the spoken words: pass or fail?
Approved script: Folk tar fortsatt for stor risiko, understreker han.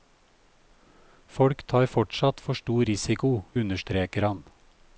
pass